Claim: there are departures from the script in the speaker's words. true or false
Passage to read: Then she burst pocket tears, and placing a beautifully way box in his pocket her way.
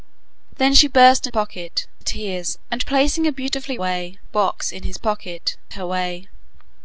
false